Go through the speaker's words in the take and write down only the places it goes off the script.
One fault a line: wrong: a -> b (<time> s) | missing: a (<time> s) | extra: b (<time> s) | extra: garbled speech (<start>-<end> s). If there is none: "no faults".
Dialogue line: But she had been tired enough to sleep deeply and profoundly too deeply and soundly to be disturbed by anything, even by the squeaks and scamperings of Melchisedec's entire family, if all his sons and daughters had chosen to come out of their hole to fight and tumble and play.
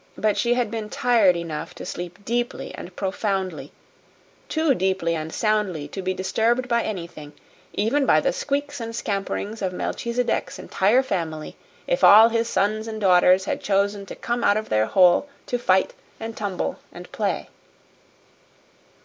no faults